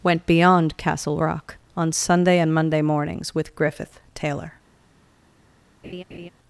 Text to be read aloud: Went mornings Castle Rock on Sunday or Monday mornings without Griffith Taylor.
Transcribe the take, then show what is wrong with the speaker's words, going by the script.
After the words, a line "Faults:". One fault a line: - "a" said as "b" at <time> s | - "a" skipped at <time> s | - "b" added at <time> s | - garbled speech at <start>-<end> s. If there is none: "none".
Went beyond Castle Rock on Sunday and Monday mornings with Griffith Taylor.
Faults:
- "mornings" said as "beyond" at 0.2 s
- "or" said as "and" at 2.4 s
- "without" said as "with" at 3.4 s